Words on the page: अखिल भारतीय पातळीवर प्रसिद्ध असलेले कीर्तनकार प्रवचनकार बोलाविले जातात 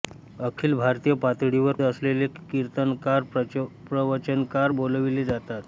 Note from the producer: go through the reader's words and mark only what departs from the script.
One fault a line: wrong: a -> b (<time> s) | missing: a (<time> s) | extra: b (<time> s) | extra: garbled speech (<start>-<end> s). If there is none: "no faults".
missing: प्रसिद्ध (1.8 s)